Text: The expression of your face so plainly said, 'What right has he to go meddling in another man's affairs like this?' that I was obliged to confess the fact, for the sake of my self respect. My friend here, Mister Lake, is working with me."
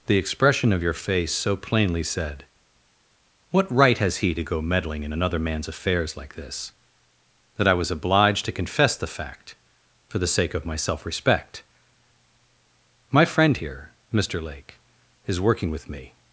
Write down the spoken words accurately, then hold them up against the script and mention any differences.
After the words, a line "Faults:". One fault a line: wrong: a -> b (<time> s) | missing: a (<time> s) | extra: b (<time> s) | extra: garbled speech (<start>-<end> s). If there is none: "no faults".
The expression of your face so plainly said, 'What right has he to go meddling in another man's affairs like this?' that I was obliged to confess the fact, for the sake of my self respect. My friend here, Mister Lake, is working with me."
Faults:
no faults